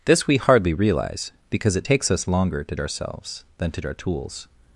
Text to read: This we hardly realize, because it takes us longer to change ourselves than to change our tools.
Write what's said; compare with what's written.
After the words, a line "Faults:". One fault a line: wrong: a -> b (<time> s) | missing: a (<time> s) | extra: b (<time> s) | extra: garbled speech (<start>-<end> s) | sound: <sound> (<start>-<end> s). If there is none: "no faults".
This we hardly realize, because it takes us longer to ourselves than to our tools.
Faults:
missing: change (2.8 s)
missing: change (3.8 s)